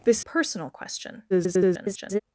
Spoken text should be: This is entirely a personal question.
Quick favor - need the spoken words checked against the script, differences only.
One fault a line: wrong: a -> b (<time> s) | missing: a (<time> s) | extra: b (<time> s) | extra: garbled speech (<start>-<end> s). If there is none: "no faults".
missing: is entirely a (0.2 s)
extra: garbled speech (1.3-2.2 s)